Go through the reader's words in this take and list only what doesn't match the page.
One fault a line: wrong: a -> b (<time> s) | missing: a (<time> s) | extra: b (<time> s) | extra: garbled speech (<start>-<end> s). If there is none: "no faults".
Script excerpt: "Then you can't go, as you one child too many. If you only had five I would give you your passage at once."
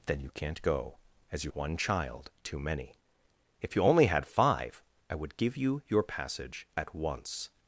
no faults